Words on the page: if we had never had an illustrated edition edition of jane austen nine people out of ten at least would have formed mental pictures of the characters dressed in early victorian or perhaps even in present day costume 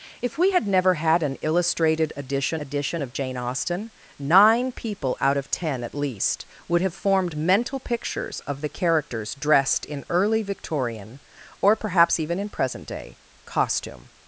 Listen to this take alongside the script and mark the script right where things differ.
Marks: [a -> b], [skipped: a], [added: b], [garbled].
if we had never had an illustrated edition edition of jane austen nine people out of ten at least would have formed mental pictures of the characters dressed in early victorian or perhaps even in present day costume